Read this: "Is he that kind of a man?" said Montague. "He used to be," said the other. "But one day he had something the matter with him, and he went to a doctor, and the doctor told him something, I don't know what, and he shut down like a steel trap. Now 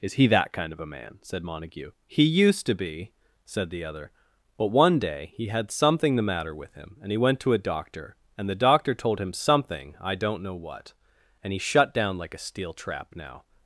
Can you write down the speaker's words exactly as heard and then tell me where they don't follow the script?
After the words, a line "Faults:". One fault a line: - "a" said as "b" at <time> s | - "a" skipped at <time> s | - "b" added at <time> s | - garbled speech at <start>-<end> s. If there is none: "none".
"Is he that kind of a man?" said Montague. "He used to be," said the other. "But one day he had something the matter with him, and he went to a doctor, and the doctor told him something, I don't know what, and he shut down like a steel trap. Now
Faults:
none